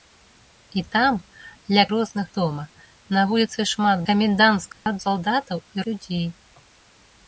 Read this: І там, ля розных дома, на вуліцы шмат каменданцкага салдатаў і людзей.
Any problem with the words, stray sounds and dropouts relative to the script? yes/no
yes